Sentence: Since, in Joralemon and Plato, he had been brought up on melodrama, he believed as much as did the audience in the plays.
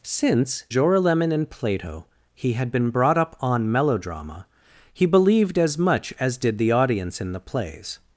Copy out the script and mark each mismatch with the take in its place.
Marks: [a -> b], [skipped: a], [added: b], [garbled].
Since, [skipped: in] Joralemon and Plato, he had been brought up on melodrama, he believed as much as did the audience in the plays.